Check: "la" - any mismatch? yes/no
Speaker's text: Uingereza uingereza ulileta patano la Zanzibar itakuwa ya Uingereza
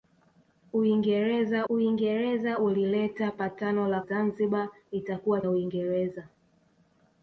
no